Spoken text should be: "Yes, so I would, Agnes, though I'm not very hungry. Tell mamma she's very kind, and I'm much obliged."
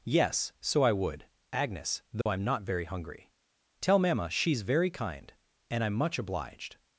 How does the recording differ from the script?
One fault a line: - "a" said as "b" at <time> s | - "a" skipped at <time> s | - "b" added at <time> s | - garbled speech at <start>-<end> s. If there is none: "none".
none